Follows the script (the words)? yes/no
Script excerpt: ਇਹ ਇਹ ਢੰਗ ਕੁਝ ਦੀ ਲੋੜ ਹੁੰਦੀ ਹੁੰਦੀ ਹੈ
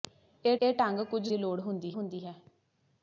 yes